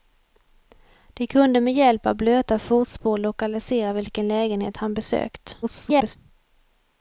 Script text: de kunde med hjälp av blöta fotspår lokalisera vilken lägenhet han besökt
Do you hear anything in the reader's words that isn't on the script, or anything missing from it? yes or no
yes